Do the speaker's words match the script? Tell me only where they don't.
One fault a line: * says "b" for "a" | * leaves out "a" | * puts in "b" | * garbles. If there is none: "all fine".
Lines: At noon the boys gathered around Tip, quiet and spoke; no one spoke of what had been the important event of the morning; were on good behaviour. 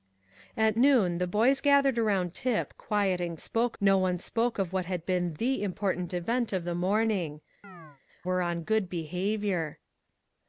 all fine